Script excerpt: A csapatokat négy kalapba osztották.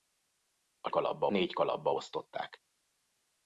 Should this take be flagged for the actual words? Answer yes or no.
yes